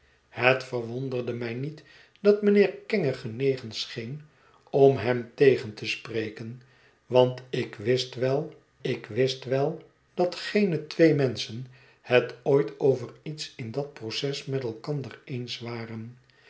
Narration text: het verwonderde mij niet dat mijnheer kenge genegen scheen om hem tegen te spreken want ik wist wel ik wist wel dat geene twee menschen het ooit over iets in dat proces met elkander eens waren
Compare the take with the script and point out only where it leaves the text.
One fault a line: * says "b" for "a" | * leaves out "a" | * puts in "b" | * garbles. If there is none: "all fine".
all fine